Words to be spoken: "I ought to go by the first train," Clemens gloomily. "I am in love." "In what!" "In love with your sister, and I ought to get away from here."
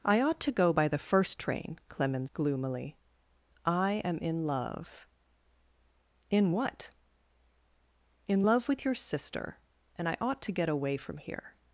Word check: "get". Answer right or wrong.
right